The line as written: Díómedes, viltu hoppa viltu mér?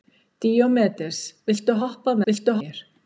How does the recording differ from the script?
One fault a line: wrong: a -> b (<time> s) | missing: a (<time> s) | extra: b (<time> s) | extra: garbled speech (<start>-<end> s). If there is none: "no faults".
no faults